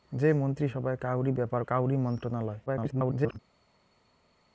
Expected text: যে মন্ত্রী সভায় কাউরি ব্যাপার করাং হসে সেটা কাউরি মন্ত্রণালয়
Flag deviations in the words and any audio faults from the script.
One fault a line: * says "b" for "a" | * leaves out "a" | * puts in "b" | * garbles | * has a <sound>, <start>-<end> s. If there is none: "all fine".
* leaves out "করাং হসে সেটা"
* garbles